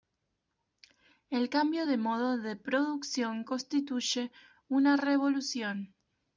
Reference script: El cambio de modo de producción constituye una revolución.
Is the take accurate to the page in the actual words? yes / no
yes